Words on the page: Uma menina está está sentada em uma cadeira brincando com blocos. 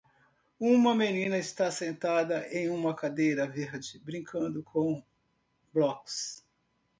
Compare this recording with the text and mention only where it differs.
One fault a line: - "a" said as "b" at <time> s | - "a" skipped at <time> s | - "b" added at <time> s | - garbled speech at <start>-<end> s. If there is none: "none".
- "está" skipped at 1.7 s
- "verde" added at 3.5 s